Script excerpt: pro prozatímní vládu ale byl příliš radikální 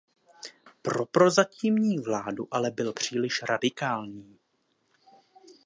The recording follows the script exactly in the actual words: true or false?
true